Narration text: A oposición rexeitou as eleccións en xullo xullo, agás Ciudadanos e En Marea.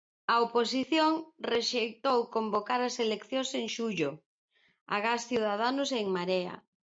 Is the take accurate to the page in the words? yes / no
no